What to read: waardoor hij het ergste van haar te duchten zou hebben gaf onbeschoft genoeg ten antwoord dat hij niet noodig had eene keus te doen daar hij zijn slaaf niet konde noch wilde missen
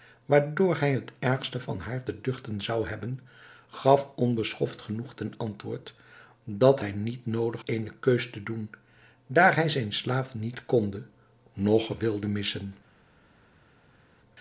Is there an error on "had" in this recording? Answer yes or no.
yes